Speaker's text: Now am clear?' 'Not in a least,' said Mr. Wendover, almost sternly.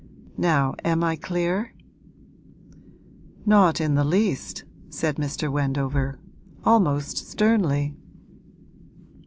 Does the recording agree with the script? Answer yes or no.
no